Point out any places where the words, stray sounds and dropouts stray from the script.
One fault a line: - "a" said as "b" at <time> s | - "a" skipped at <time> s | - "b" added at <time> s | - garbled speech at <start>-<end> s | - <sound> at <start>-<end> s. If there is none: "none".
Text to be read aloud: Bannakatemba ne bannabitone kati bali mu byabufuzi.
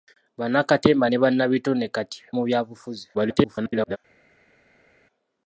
- "bali" skipped at 2.2 s
- garbled speech at 3.1-4.0 s